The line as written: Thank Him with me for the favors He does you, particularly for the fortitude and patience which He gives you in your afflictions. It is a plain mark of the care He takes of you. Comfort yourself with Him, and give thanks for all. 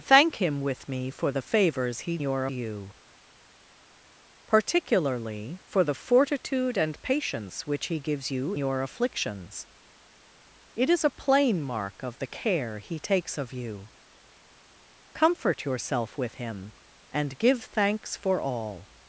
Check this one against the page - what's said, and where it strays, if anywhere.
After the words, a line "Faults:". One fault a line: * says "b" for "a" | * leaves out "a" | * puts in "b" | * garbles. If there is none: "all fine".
Thank Him with me for the favors He your you, particularly for the fortitude and patience which He gives you your afflictions. It is a plain mark of the care He takes of you. Comfort yourself with Him, and give thanks for all.
Faults:
* says "your" for "does"
* leaves out "in"